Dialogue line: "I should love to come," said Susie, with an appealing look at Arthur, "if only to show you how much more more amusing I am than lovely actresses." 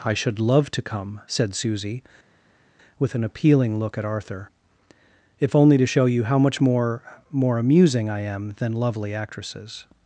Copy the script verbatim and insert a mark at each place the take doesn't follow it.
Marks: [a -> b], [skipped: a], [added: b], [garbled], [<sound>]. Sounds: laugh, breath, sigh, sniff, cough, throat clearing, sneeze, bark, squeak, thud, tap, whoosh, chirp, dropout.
"I should love to come," said Susie, with an appealing look at Arthur, "if only to show you how much more more amusing I am than lovely actresses."